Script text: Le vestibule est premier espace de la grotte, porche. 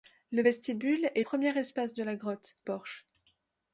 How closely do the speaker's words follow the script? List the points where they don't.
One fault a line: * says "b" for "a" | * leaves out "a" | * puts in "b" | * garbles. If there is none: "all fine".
all fine